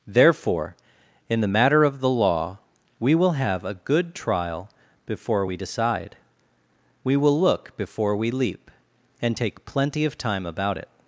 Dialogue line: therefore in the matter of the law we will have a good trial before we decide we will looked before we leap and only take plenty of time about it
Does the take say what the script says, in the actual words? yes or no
no